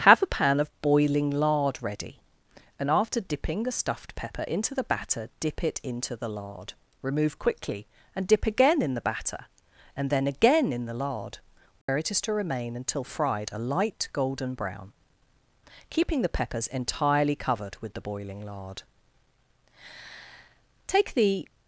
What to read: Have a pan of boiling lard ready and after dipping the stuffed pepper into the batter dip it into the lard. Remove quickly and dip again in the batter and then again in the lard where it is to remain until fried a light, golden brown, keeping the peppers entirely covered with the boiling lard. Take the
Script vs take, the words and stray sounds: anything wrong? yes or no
yes